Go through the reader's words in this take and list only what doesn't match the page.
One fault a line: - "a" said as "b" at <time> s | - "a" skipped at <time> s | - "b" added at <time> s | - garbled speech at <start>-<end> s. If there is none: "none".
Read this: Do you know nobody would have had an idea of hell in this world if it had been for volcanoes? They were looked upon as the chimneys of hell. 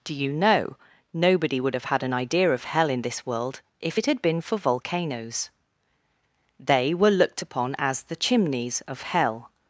none